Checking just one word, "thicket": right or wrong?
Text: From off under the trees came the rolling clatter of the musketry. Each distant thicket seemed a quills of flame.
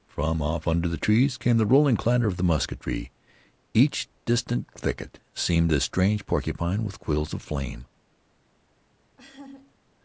right